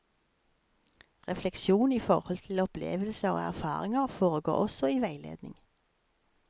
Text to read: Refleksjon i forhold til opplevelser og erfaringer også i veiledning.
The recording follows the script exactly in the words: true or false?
false